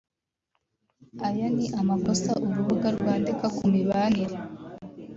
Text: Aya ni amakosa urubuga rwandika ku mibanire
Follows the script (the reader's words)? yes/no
yes